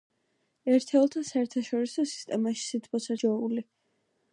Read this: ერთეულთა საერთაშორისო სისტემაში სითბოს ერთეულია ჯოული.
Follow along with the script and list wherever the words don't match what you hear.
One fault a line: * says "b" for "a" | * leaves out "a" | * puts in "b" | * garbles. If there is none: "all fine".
* leaves out "ერთეულია"